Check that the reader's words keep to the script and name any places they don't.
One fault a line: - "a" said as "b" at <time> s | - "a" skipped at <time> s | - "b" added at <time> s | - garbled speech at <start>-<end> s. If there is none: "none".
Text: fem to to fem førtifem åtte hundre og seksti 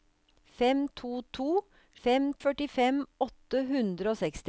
none